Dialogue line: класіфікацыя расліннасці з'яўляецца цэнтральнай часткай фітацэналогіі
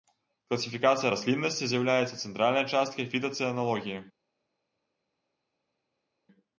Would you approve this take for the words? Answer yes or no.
yes